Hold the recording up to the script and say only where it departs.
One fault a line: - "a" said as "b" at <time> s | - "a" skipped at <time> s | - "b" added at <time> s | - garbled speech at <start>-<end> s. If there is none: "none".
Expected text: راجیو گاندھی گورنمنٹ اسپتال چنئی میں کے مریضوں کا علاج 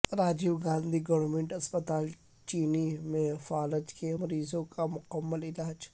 - "فالج" added at 3.5 s
- "مکمل" added at 4.9 s